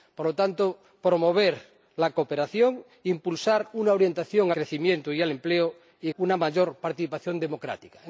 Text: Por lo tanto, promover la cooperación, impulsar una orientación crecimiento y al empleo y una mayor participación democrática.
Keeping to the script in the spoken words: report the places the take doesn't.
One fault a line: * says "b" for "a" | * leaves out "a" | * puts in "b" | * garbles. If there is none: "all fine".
all fine